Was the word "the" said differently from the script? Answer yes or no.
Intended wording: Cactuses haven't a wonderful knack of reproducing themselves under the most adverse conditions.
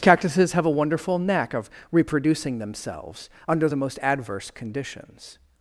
no